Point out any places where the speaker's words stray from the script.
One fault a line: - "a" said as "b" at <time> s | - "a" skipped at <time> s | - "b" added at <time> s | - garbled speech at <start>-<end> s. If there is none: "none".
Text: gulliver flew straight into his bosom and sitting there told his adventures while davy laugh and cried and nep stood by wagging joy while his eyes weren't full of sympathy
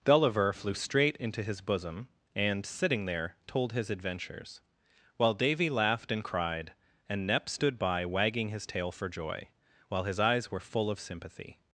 - "laugh" said as "laughed" at 5.7 s
- "his tail for" added at 8.5 s
- "weren't" said as "were" at 10.5 s